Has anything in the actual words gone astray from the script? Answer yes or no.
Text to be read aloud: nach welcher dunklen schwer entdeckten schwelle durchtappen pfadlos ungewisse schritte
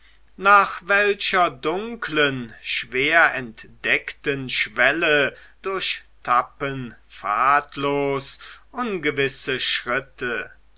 no